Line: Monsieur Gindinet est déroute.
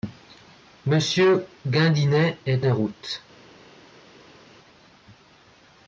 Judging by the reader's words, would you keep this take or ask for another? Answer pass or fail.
pass